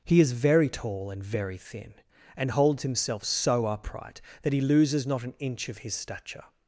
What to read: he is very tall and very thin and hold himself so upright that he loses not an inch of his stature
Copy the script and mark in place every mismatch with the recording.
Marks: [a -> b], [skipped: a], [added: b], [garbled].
he is very tall and very thin and [hold -> holds] himself so upright that he loses not an inch of his stature